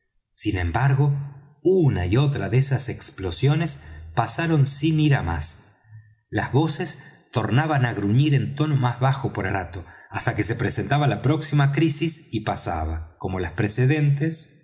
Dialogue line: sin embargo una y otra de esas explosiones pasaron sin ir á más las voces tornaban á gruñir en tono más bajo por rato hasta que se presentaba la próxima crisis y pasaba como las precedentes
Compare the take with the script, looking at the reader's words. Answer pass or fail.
pass